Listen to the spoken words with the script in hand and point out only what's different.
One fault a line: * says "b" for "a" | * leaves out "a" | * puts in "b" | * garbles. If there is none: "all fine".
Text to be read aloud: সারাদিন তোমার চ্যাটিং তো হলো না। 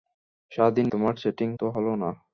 all fine